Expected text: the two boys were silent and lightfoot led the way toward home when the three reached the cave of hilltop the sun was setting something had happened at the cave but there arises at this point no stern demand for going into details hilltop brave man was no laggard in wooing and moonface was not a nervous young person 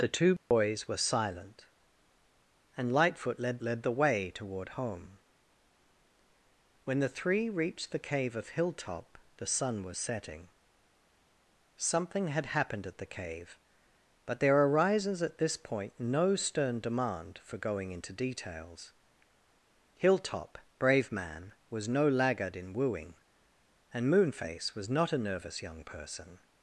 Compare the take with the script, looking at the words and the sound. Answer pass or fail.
fail